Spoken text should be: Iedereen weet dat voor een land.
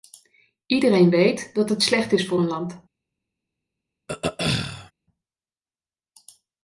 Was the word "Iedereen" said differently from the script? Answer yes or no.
no